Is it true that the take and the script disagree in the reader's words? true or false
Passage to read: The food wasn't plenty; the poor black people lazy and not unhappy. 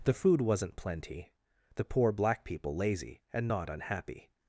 false